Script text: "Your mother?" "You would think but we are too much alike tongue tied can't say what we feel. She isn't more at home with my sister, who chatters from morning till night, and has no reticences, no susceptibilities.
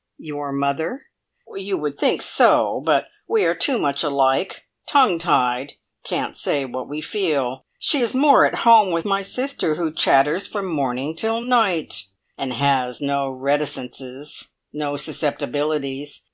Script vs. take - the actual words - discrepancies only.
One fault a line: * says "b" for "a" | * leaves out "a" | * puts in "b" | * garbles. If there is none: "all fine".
* puts in "so"
* says "is" for "isn't"